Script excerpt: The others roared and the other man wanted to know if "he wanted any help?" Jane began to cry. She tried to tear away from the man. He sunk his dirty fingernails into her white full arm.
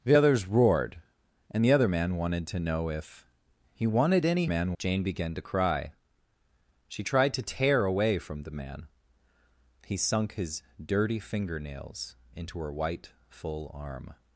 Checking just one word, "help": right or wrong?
wrong